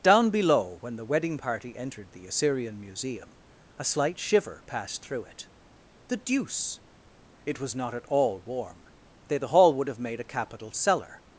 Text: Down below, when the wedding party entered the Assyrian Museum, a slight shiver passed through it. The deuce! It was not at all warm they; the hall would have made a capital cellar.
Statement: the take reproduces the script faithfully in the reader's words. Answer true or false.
true